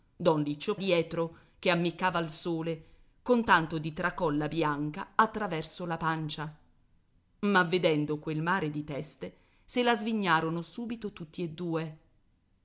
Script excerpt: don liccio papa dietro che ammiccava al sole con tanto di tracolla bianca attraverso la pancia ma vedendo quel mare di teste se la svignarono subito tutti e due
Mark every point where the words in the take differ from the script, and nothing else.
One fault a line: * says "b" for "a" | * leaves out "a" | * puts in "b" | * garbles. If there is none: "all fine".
* leaves out "papa"